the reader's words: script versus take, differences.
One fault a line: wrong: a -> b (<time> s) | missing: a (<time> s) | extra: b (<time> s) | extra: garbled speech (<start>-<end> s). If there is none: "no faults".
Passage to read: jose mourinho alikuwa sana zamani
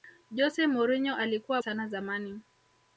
no faults